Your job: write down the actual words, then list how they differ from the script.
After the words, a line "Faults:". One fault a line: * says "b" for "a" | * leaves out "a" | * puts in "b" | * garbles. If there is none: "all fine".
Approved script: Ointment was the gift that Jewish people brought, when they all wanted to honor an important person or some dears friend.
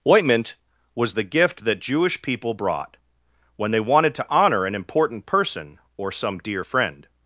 Ointment was the gift that Jewish people brought, when they wanted to honor an important person or some dear friend.
Faults:
* leaves out "all"
* says "dear" for "dears"